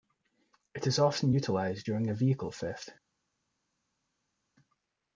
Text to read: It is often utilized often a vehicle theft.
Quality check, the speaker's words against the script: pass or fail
fail